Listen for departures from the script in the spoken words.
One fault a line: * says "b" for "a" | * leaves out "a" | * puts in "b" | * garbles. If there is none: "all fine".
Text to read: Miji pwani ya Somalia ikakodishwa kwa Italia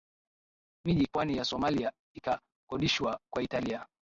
all fine